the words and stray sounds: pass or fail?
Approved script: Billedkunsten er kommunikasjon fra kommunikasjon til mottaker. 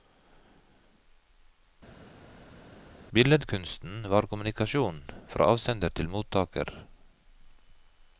fail